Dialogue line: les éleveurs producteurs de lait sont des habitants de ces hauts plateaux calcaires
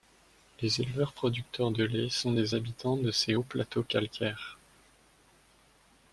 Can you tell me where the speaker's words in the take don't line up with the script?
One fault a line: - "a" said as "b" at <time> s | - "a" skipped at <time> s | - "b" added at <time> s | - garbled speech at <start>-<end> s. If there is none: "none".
none